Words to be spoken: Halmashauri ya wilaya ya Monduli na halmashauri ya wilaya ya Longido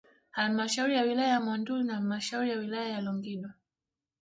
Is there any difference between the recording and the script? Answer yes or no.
no